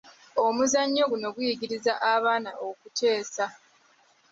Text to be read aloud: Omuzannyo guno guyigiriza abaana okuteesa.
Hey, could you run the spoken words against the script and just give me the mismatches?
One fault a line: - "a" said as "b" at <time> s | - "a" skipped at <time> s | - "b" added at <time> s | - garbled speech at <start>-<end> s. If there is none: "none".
none